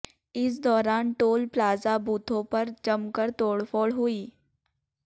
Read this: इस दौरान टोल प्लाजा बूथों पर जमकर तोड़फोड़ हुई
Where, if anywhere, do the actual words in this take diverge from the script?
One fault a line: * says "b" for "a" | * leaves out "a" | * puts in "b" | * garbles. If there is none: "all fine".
all fine